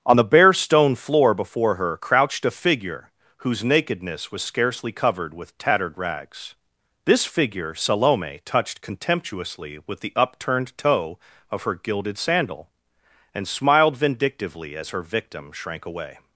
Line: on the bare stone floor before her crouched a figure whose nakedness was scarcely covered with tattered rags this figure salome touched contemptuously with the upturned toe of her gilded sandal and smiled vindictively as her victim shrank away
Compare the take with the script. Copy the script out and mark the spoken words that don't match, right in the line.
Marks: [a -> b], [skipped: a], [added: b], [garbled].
on the bare stone floor before her crouched a figure whose nakedness was scarcely covered with tattered rags this figure salome touched contemptuously with the upturned toe of her gilded sandal and smiled vindictively as her victim shrank away